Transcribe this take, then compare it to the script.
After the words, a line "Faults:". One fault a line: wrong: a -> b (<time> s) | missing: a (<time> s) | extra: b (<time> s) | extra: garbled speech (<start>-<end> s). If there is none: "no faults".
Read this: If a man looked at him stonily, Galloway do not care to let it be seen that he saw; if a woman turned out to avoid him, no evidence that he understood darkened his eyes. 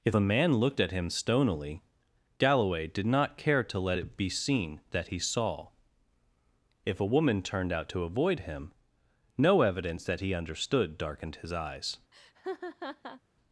If a man looked at him stonily, Galloway did not care to let it be seen that he saw; if a woman turned out to avoid him, no evidence that he understood darkened his eyes.
Faults:
wrong: do -> did (2.9 s)